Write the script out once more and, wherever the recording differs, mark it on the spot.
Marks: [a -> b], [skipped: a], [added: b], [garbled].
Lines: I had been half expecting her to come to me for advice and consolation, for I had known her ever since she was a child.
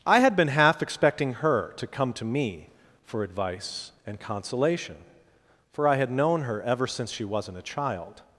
I had been half expecting her to come to me for advice and consolation, for I had known her ever since she [was -> wasn't] a child.